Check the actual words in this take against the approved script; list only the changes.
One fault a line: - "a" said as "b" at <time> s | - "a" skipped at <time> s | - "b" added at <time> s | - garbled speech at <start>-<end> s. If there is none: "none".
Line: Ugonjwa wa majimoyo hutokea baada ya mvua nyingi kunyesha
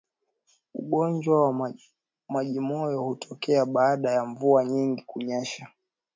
none